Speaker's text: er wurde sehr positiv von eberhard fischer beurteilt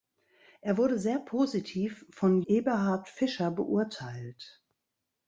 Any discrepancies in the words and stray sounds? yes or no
no